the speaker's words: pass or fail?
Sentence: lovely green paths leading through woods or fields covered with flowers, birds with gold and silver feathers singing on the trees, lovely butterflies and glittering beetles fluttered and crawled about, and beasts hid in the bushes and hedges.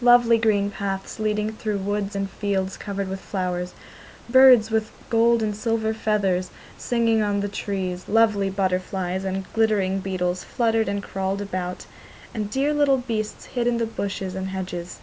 fail